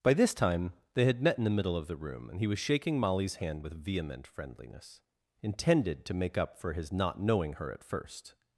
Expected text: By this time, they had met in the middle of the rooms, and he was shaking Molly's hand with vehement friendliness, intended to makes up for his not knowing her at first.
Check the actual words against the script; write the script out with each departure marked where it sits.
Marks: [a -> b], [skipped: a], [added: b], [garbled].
By this time, they had met in the middle of the [rooms, -> room] and he was shaking Molly's hand with vehement friendliness, intended to [makes -> make] up for his not knowing her at first.